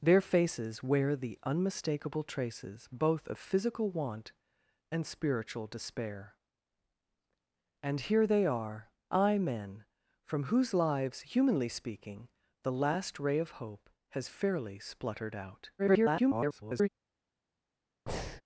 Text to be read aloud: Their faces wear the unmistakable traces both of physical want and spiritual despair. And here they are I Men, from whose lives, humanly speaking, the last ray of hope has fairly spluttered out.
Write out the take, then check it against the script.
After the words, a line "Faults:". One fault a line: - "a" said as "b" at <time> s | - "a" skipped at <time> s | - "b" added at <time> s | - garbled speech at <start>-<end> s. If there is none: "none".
Their faces wear the unmistakable traces both of physical want and spiritual despair. And here they are I Men, from whose lives, humanly speaking, the last ray of hope has fairly spluttered out. [garbled]
Faults:
- garbled speech at 15.8-16.9 s